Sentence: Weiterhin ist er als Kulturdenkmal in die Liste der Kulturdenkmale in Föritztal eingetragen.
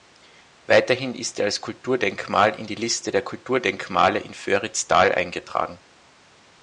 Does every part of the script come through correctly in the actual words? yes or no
yes